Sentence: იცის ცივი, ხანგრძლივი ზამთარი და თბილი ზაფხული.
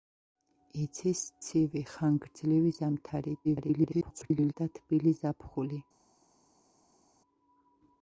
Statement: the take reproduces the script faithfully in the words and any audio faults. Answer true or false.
false